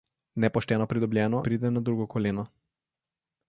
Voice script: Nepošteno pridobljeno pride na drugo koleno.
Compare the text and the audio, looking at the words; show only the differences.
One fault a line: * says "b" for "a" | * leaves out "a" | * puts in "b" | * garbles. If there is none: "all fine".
all fine